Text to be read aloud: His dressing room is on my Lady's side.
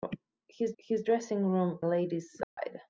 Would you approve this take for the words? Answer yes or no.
no